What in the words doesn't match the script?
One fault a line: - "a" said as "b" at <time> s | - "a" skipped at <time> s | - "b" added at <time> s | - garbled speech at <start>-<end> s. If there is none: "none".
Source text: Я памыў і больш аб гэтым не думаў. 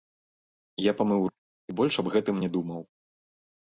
none